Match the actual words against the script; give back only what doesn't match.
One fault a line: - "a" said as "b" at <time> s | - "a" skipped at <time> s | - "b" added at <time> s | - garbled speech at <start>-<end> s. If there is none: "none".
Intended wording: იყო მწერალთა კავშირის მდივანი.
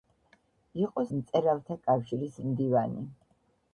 none